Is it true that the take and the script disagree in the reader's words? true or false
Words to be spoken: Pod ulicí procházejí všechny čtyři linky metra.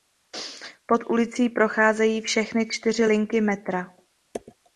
false